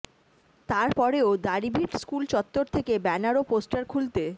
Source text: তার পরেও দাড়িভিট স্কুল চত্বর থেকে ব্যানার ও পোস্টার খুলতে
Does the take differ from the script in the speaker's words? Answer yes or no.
no